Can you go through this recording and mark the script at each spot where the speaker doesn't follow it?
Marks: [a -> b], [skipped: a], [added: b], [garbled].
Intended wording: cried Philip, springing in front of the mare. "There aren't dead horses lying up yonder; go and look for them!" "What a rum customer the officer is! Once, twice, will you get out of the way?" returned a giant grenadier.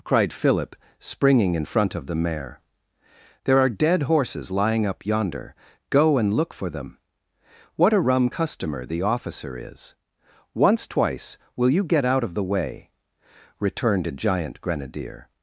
cried Philip, springing in front of the mare. "There [aren't -> are] dead horses lying up yonder; go and look for them!" "What a rum customer the officer is! Once, twice, will you get out of the way?" returned a giant grenadier.